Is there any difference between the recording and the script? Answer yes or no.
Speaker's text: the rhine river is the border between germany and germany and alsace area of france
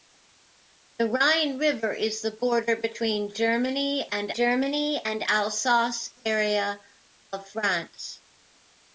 no